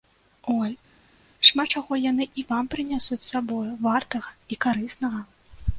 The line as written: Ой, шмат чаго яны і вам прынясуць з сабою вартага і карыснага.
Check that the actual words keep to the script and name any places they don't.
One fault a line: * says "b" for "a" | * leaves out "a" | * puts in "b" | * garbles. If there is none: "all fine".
all fine